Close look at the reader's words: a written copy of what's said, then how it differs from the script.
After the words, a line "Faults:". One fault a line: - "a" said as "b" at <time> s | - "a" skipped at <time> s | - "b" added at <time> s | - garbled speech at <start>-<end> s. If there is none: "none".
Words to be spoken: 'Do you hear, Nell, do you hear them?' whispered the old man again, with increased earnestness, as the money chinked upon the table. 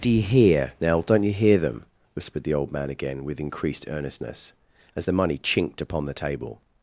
'Do you hear, Nell, don't you hear them?' whispered the old man again, with increased earnestness, as the money chinked upon the table.
Faults:
- "do" said as "don't" at 1.0 s